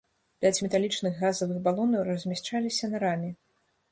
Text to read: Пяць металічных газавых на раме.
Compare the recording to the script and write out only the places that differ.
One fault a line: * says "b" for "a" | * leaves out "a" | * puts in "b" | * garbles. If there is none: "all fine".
* puts in "балонаў размяшчаліся"